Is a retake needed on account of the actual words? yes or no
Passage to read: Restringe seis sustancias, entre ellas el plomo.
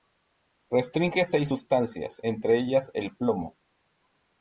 no